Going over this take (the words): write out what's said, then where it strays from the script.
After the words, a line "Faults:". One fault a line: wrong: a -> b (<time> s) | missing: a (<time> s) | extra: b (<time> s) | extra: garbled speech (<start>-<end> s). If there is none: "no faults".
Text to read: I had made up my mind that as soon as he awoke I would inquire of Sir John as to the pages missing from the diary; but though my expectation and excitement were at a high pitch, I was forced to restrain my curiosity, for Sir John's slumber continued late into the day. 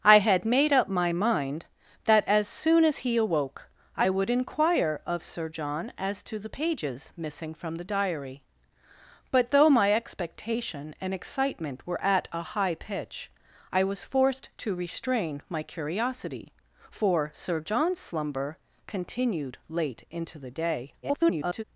I had made up my mind that as soon as he awoke I would inquire of Sir John as to the pages missing from the diary; but though my expectation and excitement were at a high pitch, I was forced to restrain my curiosity, for Sir John's slumber continued late into the day. [garbled]
Faults:
extra: garbled speech (21.0-21.6 s)